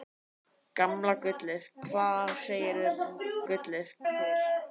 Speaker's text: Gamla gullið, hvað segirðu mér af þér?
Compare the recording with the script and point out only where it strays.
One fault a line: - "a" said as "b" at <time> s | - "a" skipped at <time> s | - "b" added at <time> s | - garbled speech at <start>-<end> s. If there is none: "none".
- "mér" said as "gullið" at 3.5 s